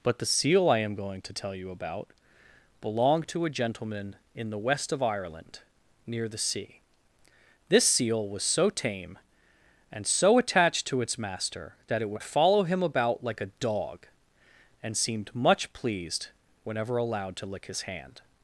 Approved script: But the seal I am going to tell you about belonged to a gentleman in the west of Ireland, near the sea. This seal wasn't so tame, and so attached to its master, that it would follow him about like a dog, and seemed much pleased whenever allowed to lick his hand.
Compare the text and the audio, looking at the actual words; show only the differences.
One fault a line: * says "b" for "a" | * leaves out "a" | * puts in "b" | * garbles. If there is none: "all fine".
* says "was" for "wasn't"